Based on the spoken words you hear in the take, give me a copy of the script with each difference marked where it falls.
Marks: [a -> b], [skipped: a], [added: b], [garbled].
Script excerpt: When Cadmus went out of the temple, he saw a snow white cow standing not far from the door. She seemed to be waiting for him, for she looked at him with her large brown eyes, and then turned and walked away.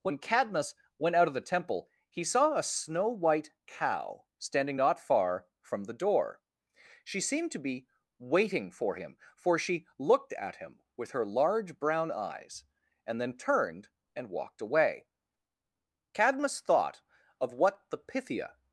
When Cadmus went out of the temple, he saw a snow white cow standing not far from the door. She seemed to be waiting for him, for she looked at him with her large brown eyes, and then turned and walked away. [added: Cadmus thought of what the Pythia]